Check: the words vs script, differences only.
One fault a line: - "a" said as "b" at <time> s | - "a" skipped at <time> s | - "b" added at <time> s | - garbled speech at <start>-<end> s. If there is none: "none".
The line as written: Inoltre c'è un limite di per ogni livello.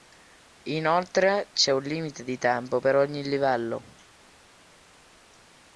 - "tempo" added at 2.4 s